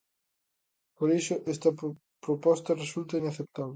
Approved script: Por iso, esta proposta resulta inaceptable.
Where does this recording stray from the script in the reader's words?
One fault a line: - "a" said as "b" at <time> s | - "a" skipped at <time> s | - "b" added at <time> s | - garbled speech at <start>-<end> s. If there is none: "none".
none